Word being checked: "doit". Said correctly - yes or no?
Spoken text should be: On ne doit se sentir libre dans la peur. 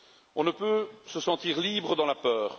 no